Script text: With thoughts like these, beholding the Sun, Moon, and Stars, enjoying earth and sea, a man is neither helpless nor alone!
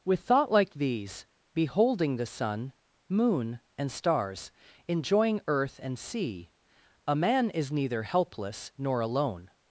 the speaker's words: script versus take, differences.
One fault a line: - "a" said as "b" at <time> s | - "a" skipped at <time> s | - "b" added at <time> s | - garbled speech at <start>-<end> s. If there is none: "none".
- "thoughts" said as "thought" at 0.2 s